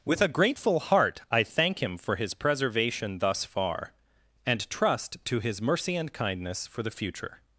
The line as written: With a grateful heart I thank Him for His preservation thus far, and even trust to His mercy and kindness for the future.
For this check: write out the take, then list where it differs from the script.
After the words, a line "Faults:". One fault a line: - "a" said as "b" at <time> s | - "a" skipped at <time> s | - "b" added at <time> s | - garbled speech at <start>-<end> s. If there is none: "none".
With a grateful heart I thank Him for His preservation thus far, and trust to His mercy and kindness for the future.
Faults:
- "even" skipped at 4.7 s